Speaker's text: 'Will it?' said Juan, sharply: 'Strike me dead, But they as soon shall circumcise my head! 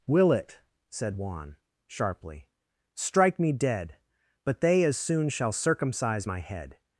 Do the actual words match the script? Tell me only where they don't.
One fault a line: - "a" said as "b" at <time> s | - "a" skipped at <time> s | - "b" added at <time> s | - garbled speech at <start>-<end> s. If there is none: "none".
none